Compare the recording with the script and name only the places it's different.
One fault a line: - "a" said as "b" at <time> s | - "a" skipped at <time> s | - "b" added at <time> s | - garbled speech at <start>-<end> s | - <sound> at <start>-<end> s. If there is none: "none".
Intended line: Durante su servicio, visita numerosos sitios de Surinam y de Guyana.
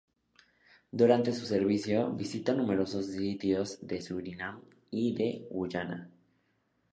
none